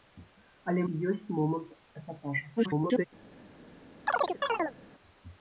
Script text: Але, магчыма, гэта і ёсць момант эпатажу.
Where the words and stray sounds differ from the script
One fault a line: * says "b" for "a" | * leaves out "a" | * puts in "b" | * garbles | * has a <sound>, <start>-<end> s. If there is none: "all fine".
* leaves out "магчыма гэта"
* garbles
* has a chirp, 4.1-4.8 s